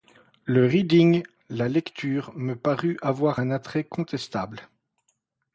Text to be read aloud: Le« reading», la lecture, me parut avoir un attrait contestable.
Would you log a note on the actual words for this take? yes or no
no